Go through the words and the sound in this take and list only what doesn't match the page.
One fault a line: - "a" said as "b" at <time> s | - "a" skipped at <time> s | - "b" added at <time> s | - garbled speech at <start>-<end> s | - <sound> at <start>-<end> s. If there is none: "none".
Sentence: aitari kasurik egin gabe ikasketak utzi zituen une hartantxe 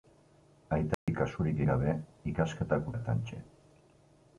- dropout at 0.9-1.1 s
- "egin" skipped at 1.6 s
- "utzi zituen une" skipped at 2.9 s